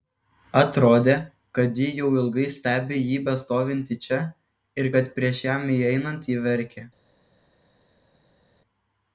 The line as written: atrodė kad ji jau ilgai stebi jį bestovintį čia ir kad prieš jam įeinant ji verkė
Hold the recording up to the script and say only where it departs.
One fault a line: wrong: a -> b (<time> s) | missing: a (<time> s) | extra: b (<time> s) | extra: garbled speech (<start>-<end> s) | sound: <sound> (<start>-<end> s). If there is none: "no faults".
no faults